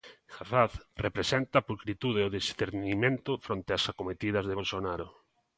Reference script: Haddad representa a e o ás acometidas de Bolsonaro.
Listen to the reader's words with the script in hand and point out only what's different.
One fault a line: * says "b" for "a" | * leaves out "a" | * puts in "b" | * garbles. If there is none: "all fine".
* puts in "pulcritude"
* puts in "discernimento fronte"